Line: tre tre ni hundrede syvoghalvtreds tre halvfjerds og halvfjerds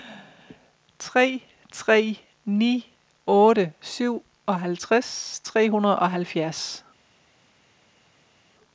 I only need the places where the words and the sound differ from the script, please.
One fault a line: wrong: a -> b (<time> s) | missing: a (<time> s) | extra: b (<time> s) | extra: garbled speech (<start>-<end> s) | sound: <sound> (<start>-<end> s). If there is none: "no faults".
wrong: hundrede -> otte (3.3 s)
wrong: halvfjerds -> hundrede (5.7 s)